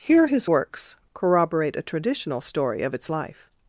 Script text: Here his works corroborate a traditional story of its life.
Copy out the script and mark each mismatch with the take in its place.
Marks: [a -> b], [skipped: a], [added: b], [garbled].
Here his works corroborate a traditional story of its life.